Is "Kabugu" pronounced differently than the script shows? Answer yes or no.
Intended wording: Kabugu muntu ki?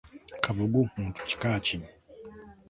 no